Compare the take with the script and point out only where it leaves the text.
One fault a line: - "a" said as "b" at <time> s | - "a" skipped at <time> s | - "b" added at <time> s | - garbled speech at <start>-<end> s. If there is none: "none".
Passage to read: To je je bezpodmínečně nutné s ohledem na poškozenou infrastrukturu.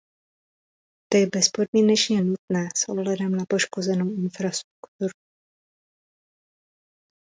- "je" skipped at 1.3 s